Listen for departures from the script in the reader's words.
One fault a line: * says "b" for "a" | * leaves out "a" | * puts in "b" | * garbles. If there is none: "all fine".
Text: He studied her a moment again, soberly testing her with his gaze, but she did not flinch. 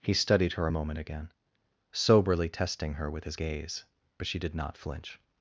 all fine